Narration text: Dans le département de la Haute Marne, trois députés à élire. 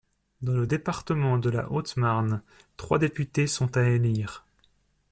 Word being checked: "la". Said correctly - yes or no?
yes